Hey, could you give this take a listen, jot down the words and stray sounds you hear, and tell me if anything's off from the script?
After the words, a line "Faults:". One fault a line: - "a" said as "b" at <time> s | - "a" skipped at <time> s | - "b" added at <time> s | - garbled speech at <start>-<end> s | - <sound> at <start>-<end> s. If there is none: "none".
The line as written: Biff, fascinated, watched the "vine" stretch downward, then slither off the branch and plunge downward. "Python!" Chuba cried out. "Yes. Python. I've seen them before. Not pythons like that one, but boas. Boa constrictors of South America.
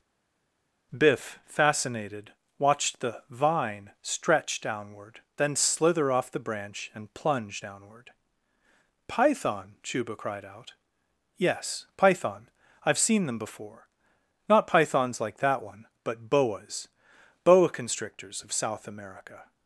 Biff, fascinated, watched the "vine" stretch downward, then slither off the branch and plunge downward. "Python!" Chuba cried out. "Yes. Python. I've seen them before. Not pythons like that one, but boas. Boa constrictors of South America.
Faults:
none